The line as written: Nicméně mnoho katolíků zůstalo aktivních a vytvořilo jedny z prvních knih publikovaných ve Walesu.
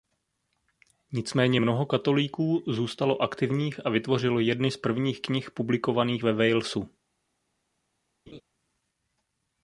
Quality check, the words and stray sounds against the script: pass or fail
fail